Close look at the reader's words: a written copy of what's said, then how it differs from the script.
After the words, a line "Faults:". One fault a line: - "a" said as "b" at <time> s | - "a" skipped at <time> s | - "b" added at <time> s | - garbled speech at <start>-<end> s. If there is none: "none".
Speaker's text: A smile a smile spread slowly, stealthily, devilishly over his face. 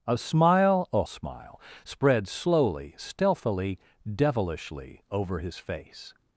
A smile a smile spread slowly, stealthily, devilishly over his face.
Faults:
none